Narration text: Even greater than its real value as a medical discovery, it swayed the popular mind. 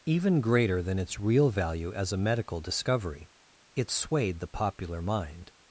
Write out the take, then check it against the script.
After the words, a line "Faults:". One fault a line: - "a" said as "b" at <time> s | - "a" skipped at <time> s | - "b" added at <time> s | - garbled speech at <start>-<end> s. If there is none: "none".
Even greater than its real value as a medical discovery, it swayed the popular mind.
Faults:
none